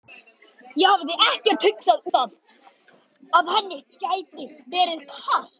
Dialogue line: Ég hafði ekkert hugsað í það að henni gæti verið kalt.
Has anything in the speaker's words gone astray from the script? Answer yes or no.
no